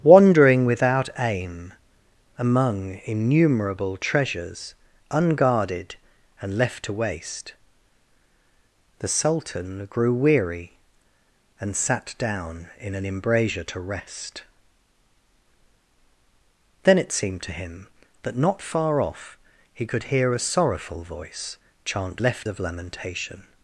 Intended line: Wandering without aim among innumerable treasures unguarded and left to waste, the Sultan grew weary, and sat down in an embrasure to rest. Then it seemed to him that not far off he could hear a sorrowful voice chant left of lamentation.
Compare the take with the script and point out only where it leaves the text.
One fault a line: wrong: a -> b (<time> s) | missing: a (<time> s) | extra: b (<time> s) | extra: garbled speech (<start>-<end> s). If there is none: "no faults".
no faults